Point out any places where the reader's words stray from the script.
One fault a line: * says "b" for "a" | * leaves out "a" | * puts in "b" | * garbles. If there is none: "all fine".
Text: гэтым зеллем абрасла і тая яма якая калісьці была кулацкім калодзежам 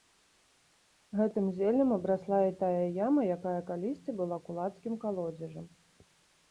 all fine